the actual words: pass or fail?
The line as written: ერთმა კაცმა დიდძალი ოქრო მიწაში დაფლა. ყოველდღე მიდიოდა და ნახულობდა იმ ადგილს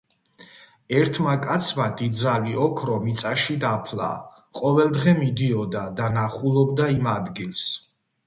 pass